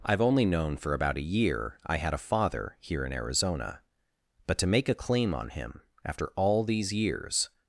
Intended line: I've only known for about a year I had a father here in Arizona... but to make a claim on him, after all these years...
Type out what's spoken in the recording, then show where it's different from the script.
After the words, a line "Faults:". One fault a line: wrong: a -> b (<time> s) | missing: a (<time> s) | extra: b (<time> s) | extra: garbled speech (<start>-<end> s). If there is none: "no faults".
I've only known for about a year I had a father here in Arizona... but to make a claim on him, after all these years...
Faults:
no faults